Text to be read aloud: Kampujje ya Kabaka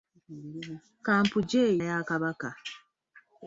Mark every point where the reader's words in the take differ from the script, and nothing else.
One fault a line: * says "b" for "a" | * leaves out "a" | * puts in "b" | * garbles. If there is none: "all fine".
all fine